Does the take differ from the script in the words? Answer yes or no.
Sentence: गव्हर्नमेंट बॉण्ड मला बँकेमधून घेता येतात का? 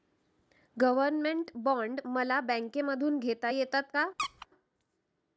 no